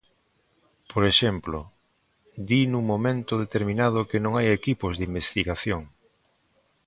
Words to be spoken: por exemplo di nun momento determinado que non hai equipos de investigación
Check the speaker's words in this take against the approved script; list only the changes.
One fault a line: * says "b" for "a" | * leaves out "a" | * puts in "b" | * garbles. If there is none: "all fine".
all fine